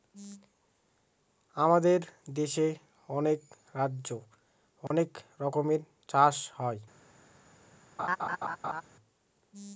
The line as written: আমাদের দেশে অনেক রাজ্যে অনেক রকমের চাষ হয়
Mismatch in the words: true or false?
false